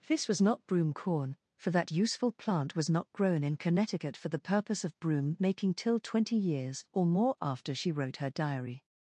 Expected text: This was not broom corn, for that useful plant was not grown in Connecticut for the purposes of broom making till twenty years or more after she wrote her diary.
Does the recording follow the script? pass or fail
fail